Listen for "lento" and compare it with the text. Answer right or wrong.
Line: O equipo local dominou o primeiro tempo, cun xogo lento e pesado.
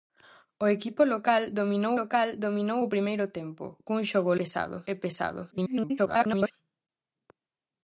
wrong